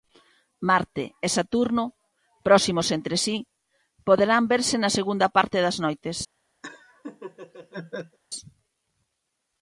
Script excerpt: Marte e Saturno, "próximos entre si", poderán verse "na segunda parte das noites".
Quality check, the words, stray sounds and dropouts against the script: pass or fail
fail